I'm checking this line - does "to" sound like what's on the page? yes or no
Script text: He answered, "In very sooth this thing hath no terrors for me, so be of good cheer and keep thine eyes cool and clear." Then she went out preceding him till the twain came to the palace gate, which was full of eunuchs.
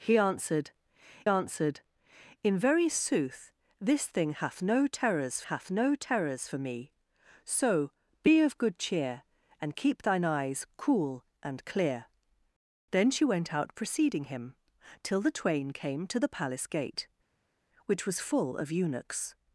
yes